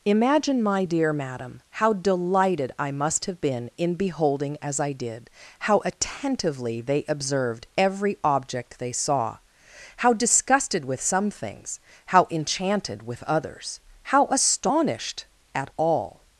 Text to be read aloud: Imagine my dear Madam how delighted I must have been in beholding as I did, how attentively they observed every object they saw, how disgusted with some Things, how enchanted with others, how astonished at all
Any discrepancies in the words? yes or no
no